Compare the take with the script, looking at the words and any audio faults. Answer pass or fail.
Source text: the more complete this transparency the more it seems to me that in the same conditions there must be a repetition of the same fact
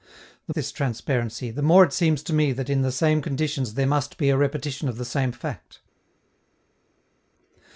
fail